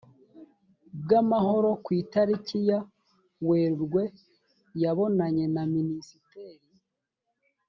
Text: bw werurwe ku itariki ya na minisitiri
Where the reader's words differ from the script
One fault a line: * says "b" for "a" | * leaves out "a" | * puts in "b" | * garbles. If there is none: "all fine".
* says "amahoro" for "werurwe"
* puts in "werurwe yabonanye"